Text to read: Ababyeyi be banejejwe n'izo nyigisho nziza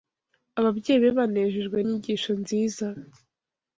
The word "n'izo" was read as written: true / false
false